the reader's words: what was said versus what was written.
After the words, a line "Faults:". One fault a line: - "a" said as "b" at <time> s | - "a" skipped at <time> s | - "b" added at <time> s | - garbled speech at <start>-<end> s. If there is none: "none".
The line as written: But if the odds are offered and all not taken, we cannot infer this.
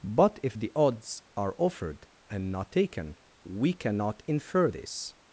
But if the odds are offered and not taken, we cannot infer this.
Faults:
- "all" skipped at 2.5 s